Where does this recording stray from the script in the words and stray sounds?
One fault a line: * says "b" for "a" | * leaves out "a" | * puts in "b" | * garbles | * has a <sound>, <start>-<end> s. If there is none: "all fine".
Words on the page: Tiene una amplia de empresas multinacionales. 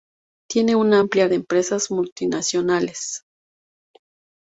all fine